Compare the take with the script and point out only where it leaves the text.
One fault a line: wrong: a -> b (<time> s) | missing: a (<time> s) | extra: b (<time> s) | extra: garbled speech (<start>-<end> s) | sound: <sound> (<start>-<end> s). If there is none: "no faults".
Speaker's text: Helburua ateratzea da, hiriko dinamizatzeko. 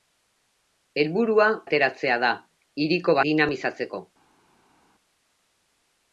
no faults